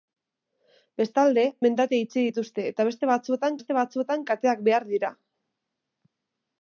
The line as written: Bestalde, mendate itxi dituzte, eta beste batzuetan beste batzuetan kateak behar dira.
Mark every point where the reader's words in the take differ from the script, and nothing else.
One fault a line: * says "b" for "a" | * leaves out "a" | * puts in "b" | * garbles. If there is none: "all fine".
all fine